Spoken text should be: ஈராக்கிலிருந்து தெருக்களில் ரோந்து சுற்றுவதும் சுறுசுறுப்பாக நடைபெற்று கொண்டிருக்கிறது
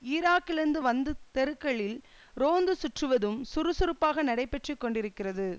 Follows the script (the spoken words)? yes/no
no